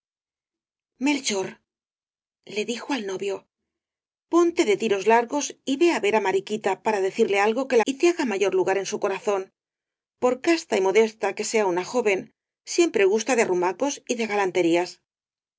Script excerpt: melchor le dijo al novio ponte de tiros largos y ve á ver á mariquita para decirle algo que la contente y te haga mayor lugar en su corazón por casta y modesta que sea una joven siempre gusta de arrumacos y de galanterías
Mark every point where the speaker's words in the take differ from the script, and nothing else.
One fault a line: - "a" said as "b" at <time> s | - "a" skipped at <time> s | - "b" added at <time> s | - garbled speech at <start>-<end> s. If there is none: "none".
- "la contente" skipped at 7.8 s